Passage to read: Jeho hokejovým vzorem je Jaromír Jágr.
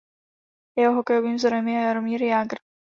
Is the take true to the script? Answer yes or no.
yes